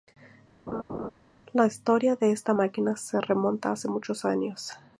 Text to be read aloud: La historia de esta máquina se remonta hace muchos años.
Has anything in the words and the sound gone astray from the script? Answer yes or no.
yes